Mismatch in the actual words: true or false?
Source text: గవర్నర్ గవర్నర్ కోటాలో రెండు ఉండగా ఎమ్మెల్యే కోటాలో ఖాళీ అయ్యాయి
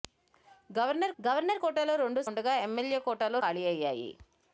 false